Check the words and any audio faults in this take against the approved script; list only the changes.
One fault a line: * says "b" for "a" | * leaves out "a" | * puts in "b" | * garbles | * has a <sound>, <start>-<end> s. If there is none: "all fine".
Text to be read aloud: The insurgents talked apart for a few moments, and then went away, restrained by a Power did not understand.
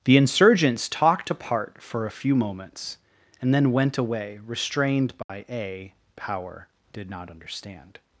* has a dropout, 5.2-5.3 s